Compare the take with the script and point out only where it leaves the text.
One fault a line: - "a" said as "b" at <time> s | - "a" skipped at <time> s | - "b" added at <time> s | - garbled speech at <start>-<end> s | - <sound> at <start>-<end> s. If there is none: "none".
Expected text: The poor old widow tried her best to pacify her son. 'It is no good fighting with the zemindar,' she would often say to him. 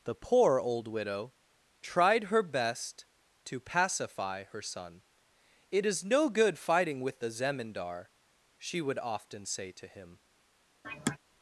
- sigh at 10.8-11.2 s